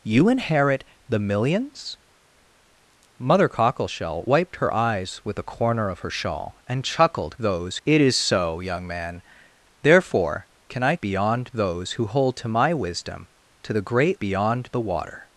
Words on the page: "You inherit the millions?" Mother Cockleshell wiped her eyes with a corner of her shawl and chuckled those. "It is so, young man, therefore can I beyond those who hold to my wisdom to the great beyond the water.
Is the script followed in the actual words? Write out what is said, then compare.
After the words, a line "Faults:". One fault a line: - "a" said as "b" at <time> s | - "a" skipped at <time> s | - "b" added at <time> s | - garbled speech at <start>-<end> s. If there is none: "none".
"You inherit the millions?" Mother Cockleshell wiped her eyes with a corner of her shawl and chuckled those. "It is so, young man, therefore can I beyond those who hold to my wisdom to the great beyond the water.
Faults:
none